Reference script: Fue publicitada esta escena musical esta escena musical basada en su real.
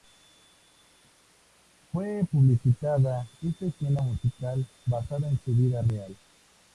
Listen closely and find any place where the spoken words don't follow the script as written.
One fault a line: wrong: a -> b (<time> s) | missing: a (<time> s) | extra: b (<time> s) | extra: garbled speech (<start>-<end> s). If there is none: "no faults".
missing: esta escena musical (4.7 s)
extra: vida (5.5 s)